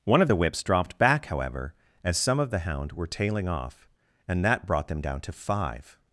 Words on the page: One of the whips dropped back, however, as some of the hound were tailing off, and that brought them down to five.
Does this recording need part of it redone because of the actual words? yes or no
no